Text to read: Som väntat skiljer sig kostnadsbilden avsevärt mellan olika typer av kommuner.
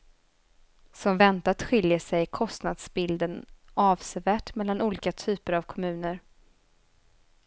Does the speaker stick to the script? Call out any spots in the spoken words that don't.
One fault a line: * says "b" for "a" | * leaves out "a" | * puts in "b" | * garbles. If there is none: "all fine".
all fine